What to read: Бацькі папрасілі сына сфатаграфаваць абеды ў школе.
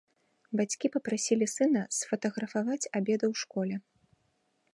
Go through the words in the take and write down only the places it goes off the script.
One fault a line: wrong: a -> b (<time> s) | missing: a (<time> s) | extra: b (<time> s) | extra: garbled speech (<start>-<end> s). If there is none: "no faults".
no faults